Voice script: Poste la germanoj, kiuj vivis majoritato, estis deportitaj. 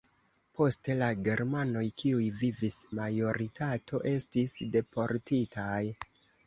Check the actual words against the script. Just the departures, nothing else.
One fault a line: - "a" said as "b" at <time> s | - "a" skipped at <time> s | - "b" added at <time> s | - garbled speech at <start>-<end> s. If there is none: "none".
none